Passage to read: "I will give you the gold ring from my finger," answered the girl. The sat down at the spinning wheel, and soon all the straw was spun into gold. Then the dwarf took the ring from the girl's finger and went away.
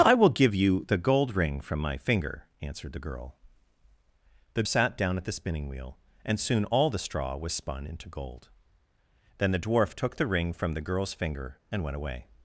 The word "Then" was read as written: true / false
true